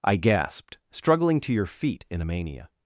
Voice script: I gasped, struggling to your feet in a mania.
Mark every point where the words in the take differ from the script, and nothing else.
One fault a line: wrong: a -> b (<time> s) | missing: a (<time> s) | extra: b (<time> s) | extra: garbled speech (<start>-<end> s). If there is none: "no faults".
no faults